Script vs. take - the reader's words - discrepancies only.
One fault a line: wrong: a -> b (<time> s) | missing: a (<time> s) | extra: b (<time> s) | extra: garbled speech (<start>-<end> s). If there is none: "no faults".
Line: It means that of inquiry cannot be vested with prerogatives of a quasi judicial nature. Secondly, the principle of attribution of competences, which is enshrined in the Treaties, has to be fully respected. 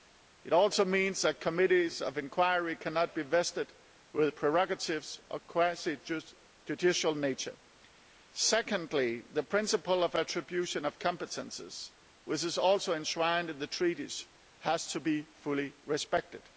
extra: also (0.5 s)
extra: committees (1.4 s)
extra: also (12.6 s)